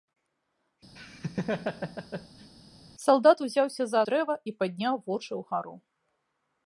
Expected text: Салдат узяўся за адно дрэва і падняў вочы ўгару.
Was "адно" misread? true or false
true